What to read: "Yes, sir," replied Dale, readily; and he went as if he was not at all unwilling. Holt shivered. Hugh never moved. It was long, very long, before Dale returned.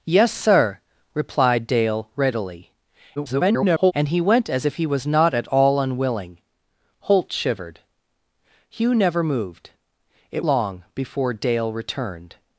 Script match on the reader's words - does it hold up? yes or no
no